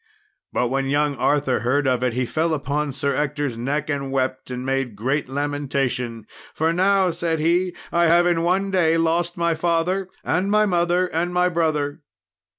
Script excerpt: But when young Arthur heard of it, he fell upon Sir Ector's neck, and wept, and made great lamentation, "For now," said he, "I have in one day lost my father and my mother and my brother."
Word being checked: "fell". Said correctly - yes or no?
yes